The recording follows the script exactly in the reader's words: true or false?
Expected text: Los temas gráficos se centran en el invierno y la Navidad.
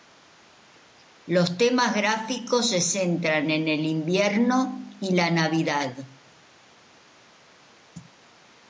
true